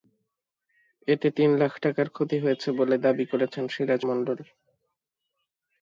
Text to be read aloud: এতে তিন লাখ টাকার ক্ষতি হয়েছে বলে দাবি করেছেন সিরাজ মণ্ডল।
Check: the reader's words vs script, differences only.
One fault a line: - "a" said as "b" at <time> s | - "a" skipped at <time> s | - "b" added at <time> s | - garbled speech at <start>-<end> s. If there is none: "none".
none